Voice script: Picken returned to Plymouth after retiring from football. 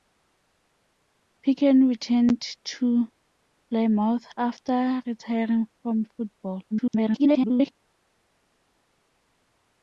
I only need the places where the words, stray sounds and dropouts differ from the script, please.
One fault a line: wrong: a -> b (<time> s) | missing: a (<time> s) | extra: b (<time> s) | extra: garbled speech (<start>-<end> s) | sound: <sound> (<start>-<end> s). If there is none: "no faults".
extra: garbled speech (6.7-7.7 s)